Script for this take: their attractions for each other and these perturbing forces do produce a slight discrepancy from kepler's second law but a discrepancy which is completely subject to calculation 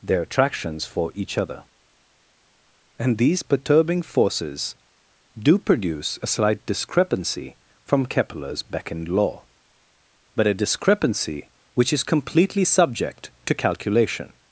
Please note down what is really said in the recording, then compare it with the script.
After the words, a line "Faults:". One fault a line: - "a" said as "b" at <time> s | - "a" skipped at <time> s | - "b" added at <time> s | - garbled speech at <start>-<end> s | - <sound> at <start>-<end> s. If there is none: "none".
their attractions for each other and these perturbing forces do produce a slight discrepancy from kepler's beckoned law but a discrepancy which is completely subject to calculation
Faults:
- "second" said as "beckoned" at 8.6 s